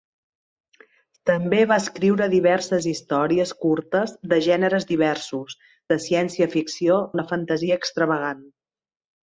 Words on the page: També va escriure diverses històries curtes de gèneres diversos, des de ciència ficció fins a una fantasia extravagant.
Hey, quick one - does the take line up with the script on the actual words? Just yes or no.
no